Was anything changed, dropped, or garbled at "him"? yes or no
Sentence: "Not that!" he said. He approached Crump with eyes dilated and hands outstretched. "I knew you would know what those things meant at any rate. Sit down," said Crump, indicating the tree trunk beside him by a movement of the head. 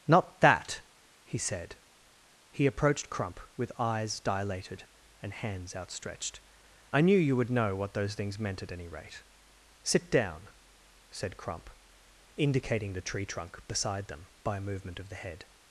yes